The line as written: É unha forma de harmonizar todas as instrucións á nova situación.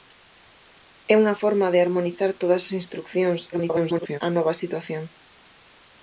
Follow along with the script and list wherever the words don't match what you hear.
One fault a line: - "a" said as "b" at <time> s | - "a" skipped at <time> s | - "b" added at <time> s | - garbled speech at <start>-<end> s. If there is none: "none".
- garbled speech at 3.5-4.2 s